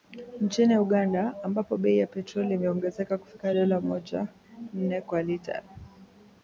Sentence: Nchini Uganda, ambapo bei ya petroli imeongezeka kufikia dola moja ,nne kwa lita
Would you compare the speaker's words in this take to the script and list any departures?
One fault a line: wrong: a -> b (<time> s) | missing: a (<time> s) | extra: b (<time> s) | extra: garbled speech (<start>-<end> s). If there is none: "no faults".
no faults